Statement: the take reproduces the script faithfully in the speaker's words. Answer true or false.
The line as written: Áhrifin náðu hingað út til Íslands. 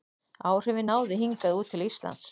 true